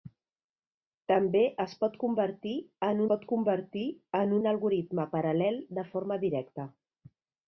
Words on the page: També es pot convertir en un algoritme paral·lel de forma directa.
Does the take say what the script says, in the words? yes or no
no